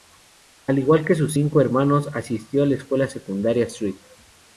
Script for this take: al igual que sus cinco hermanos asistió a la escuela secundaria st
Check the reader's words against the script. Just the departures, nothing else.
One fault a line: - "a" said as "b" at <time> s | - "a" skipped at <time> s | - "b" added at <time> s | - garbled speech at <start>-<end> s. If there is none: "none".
none